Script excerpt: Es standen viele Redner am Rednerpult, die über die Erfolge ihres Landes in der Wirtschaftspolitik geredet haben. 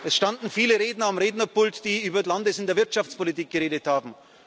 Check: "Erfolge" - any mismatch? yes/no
yes